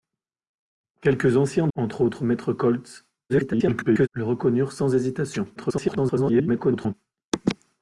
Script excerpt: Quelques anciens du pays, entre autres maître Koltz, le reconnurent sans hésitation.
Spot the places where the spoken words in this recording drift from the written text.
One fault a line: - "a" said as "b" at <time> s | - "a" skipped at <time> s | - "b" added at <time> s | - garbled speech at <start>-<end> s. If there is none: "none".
- "du pays" skipped at 1.7 s
- garbled speech at 3.3-4.1 s
- garbled speech at 5.6-6.9 s